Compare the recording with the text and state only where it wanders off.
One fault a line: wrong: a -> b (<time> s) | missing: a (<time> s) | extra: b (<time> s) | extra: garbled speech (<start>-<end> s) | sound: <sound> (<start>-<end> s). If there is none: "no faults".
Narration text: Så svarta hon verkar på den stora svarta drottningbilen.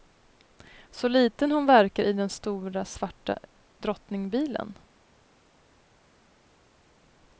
wrong: svarta -> liten (1.1 s)
wrong: på -> i (2.0 s)